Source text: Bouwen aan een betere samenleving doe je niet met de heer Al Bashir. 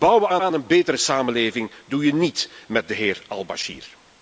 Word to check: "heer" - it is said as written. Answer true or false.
true